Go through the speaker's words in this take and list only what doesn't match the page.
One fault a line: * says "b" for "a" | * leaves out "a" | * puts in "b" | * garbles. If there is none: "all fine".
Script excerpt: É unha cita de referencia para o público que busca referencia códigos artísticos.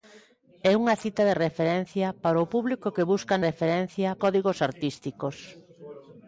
all fine